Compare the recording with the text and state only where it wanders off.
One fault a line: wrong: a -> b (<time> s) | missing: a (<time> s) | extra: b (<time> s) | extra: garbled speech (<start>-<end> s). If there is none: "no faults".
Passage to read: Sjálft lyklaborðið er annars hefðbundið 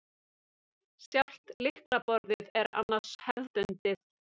no faults